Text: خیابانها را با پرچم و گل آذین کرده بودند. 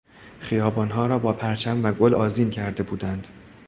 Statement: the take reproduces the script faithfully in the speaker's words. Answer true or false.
true